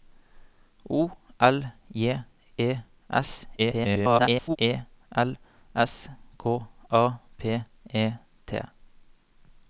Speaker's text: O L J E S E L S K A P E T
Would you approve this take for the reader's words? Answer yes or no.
no